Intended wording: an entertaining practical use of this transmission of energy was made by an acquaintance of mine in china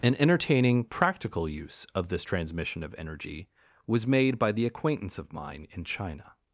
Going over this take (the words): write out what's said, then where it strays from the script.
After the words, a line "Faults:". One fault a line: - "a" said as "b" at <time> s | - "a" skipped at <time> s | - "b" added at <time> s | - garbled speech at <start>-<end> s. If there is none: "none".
an entertaining practical use of this transmission of energy was made by the acquaintance of mine in china
Faults:
- "an" said as "the" at 4.5 s